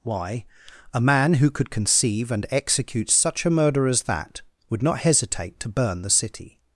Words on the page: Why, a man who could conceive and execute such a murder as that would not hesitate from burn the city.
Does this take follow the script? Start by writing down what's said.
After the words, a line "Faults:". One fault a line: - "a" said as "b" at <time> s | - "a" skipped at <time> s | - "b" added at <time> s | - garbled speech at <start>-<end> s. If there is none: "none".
Why, a man who could conceive and execute such a murder as that would not hesitate to burn the city.
Faults:
- "from" said as "to" at 5.6 s